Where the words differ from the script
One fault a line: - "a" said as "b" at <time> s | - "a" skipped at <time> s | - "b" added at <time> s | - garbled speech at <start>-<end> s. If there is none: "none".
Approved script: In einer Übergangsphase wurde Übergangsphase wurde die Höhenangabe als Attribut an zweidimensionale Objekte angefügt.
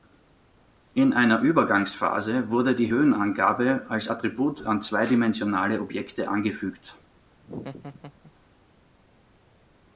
- "Übergangsphase wurde" skipped at 2.8 s